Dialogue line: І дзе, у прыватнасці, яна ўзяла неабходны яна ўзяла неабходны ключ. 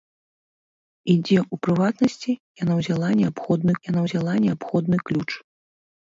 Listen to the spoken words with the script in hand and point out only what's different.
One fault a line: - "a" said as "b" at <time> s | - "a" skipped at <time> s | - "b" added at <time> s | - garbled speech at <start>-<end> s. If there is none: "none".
none